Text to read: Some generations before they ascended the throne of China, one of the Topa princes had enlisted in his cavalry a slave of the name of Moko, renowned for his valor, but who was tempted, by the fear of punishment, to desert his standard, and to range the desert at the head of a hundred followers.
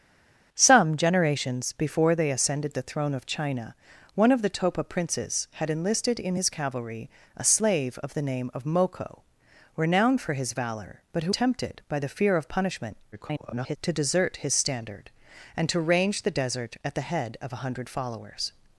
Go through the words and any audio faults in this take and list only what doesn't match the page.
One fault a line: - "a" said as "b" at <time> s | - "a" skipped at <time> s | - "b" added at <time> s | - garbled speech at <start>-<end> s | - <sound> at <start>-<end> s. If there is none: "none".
- "was" skipped at 11.3 s
- garbled speech at 13.1-13.8 s